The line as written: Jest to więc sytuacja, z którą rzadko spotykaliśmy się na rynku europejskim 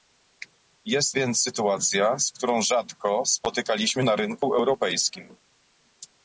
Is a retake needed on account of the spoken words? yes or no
yes